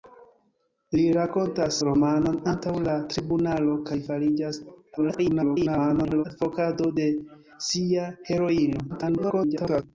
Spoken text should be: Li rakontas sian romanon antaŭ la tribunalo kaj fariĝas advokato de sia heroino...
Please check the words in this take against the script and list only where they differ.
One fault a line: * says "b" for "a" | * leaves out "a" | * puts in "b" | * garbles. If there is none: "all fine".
* leaves out "sian"
* garbles
* garbles